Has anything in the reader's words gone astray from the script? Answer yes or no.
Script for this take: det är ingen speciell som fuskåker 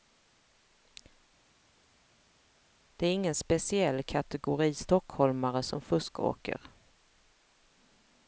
yes